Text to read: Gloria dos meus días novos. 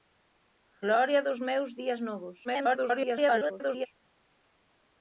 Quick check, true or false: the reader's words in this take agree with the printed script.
false